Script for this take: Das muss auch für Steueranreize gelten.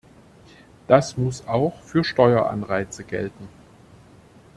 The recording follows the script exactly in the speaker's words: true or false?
true